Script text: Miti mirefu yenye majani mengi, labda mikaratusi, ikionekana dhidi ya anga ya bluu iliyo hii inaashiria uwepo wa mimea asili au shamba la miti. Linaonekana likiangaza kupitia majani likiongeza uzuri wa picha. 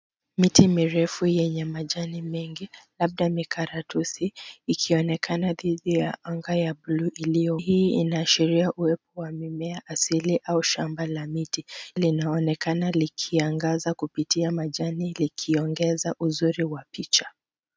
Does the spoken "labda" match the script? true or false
true